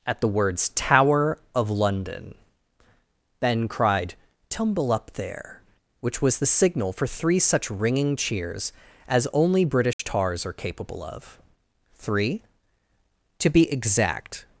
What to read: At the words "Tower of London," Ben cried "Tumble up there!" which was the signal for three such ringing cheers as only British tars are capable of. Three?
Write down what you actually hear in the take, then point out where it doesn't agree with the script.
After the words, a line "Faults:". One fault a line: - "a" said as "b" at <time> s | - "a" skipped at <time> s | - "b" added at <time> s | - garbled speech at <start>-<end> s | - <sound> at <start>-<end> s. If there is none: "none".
At the words "Tower of London," Ben cried "Tumble up there!" which was the signal for three such ringing cheers as only British tars are capable of. Three? To be exact
Faults:
- dropout at 9.9-10.0 s
- "To be exact" added at 13.4 s